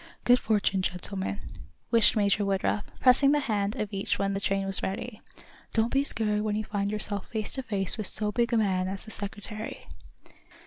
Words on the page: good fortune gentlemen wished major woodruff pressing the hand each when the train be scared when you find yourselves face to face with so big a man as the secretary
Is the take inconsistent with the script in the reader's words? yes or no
yes